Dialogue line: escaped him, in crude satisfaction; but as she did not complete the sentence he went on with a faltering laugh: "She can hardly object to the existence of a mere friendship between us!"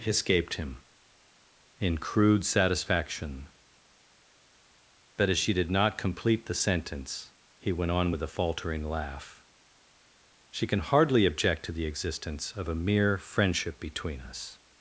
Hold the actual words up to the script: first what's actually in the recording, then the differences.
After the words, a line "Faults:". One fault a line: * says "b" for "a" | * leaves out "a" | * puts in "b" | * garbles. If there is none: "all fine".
escaped him, in crude satisfaction; but as she did not complete the sentence he went on with a faltering laugh: "She can hardly object to the existence of a mere friendship between us!"
Faults:
all fine